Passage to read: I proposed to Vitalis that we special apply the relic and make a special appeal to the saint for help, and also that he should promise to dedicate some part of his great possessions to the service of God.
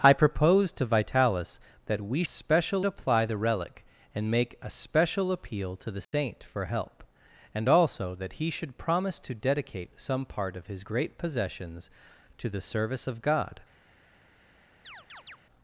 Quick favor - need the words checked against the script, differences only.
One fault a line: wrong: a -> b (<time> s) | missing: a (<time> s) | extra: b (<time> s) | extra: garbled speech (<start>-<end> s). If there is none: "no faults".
no faults